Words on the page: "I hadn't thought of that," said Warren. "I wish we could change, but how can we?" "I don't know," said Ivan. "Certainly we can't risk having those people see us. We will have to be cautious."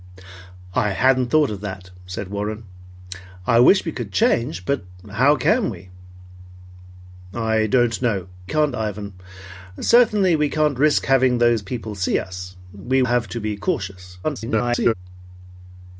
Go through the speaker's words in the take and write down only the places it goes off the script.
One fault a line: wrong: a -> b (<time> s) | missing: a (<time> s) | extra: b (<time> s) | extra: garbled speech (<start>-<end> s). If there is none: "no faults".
wrong: said -> can't (8.5 s)
missing: will (13.0 s)
extra: garbled speech (14.2-14.9 s)